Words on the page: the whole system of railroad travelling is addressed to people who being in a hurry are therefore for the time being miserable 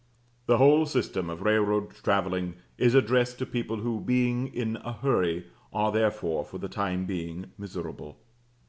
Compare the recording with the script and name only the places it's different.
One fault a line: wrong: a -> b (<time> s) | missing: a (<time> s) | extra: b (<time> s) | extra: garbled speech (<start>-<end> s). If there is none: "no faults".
no faults